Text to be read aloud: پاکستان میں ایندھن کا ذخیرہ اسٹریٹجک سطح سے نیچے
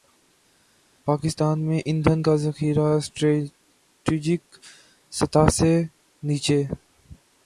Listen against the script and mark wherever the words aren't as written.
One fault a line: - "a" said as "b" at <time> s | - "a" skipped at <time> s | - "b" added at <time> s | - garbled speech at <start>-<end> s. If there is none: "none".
none